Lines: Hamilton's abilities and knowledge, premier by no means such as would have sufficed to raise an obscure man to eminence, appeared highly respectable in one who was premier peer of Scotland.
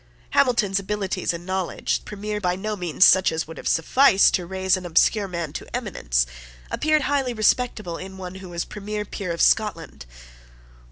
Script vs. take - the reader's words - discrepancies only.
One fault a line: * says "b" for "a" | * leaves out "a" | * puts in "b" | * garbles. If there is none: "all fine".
all fine